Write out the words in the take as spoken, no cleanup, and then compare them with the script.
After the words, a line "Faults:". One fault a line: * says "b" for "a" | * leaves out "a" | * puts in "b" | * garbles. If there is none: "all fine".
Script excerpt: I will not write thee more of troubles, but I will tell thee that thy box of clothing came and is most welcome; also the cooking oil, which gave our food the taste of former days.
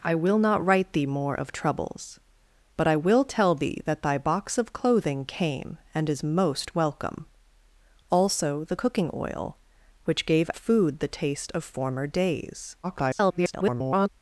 I will not write thee more of troubles, but I will tell thee that thy box of clothing came and is most welcome; also the cooking oil, which gave food the taste of former days. [garbled]
Faults:
* leaves out "our"
* garbles